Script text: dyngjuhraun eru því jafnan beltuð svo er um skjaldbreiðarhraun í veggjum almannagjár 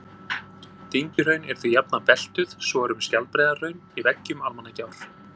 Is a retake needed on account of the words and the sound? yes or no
yes